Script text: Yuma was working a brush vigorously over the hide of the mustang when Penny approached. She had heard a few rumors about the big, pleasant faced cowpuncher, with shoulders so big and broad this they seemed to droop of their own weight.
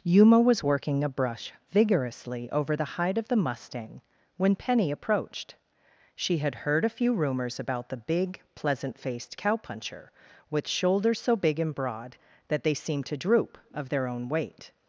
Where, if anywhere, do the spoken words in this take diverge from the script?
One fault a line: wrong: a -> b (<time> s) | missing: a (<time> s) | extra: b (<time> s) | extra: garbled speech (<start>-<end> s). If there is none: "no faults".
wrong: this -> that (12.5 s)